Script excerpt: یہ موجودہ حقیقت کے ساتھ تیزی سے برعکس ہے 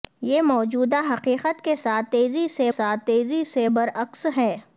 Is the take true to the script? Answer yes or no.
no